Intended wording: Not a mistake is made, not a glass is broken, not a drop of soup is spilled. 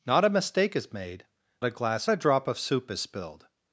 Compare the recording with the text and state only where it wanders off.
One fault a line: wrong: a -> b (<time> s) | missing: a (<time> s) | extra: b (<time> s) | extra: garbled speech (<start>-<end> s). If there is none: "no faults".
missing: not (1.2 s)
missing: is broken not (2.1 s)